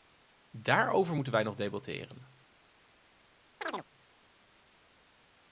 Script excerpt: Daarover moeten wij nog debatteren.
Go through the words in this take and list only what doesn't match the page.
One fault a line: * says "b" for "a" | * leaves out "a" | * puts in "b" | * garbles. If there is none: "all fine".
all fine